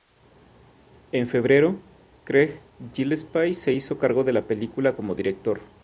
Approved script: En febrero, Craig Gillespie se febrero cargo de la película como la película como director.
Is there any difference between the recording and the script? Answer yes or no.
yes